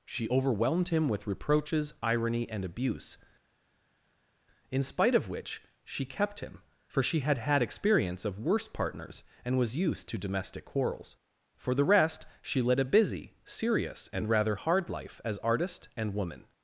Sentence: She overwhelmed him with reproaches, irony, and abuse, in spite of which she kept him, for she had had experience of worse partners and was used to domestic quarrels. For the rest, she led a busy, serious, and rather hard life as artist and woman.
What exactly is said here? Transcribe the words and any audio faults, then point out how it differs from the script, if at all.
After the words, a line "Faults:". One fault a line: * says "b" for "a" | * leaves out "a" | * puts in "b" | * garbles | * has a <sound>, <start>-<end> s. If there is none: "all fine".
She overwhelmed him with reproaches, irony, and abuse, in spite of which she kept him, for she had had experience of worse partners and was used to domestic quarrels. For the rest, she led a busy, serious, and rather hard life as artist and woman.
Faults:
all fine